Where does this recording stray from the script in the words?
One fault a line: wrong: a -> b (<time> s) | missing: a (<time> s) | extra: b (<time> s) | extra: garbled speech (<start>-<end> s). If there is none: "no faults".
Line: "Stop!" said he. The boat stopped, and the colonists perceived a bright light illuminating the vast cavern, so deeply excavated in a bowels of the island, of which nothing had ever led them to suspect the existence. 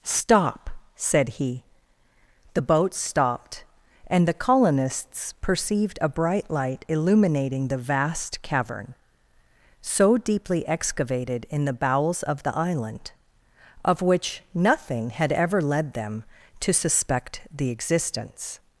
wrong: a -> the (11.7 s)